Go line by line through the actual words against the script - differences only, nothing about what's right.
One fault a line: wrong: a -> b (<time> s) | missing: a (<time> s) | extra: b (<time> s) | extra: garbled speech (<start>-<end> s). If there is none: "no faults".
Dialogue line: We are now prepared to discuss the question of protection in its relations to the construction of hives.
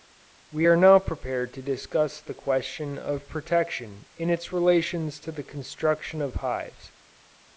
no faults